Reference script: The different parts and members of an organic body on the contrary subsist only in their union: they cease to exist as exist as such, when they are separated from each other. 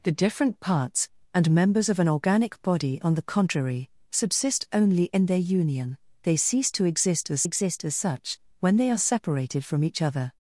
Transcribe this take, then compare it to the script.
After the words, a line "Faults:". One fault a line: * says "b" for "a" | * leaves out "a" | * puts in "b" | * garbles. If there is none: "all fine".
The different parts and members of an organic body on the contrary subsist only in their union: they cease to exist as exist as such, when they are separated from each other.
Faults:
all fine